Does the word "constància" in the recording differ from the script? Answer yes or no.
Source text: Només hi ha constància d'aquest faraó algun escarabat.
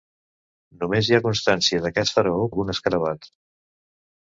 no